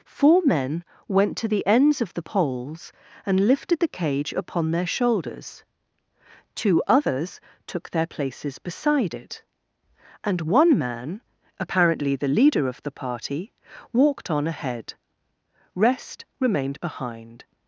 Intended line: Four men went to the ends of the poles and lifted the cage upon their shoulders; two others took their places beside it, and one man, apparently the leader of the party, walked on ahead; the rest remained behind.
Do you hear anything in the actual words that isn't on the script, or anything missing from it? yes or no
yes